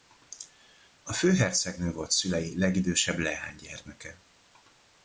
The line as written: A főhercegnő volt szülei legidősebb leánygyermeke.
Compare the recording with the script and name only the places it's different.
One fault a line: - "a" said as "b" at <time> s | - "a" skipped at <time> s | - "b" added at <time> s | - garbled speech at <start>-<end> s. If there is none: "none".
none